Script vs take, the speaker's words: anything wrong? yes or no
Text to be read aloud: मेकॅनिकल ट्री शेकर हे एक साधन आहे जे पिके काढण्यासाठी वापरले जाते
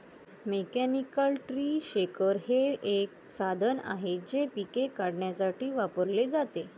no